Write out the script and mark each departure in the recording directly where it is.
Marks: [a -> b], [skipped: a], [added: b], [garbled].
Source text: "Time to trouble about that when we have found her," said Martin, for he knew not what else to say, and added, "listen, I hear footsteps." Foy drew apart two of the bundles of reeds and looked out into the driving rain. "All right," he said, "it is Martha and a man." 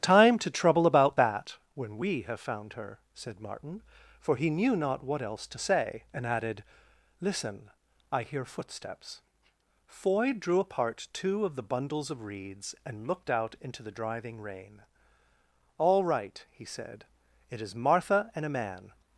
"Time to trouble about that when we have found her," said Martin, for he knew not what else to say, and added, "listen, I hear footsteps." Foy drew apart two of the bundles of reeds and looked out into the driving rain. "All right," he said, "it is Martha and a man."